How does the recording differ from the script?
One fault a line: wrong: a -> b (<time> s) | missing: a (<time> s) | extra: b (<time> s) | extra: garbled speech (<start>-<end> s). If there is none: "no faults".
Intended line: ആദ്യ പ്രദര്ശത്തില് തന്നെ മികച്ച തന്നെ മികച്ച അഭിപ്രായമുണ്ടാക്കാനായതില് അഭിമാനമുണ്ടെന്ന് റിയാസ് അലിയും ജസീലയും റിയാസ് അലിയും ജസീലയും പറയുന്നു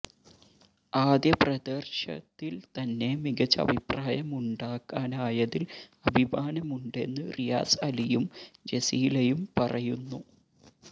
missing: തന്നെ മികച്ച (3.6 s)
missing: റിയാസ് അലിയും ജസീലയും (9.5 s)